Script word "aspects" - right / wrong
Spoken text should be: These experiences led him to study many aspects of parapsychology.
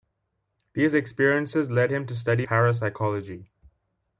wrong